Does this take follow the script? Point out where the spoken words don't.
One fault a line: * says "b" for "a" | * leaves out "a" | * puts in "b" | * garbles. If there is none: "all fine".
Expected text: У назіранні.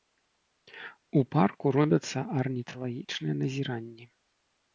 * puts in "парку робяцца арніталагічныя"